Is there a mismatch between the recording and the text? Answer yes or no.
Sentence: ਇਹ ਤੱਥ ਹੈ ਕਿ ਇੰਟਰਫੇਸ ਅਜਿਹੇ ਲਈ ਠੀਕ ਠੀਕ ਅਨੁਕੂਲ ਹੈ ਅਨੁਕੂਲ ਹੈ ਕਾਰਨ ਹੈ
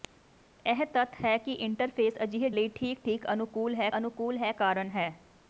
no